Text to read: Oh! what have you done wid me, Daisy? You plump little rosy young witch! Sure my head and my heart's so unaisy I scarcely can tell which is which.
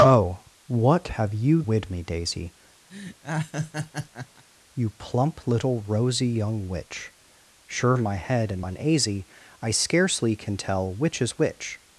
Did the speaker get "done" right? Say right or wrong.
wrong